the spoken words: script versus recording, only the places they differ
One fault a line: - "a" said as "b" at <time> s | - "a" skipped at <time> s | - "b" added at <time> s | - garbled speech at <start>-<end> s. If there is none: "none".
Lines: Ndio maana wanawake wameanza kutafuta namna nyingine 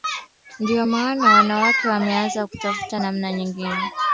none